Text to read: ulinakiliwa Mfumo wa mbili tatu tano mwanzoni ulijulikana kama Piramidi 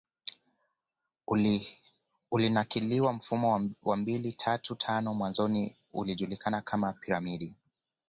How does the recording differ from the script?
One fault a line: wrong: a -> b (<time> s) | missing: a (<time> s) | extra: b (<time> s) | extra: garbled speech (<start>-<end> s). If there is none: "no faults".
no faults